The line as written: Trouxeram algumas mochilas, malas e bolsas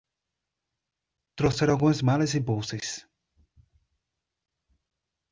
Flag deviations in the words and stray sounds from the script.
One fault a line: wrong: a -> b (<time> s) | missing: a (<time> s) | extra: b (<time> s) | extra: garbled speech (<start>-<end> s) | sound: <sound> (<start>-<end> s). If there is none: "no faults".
missing: mochilas (2.0 s)